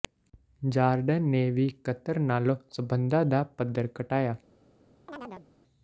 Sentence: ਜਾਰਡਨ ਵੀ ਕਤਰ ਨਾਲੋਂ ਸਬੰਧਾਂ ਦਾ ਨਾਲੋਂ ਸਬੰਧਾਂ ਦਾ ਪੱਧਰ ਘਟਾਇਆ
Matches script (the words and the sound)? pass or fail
fail